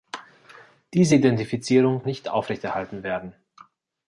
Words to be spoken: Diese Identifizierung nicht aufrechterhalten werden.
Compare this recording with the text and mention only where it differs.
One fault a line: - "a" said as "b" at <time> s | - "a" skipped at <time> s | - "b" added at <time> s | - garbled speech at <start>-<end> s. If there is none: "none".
none